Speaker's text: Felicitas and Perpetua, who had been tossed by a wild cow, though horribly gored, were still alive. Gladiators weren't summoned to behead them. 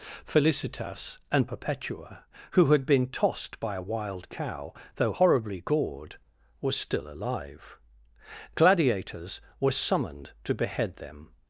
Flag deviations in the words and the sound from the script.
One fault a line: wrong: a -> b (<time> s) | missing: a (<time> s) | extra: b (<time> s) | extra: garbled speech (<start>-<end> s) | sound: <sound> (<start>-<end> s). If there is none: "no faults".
wrong: weren't -> were (9.6 s)